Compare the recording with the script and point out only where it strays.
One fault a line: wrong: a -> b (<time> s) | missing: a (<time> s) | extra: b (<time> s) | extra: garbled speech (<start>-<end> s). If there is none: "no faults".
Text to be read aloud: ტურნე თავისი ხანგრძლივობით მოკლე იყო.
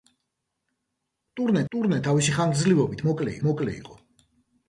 extra: ტურნე (1.7 s)
extra: მოკლე (3.5 s)